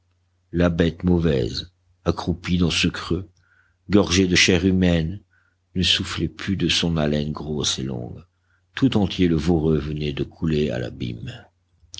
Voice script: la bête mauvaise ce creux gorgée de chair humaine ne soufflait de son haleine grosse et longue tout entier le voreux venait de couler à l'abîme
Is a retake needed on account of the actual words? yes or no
yes